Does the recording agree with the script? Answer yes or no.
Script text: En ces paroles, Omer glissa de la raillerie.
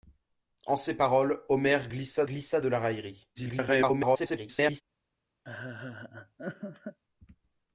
no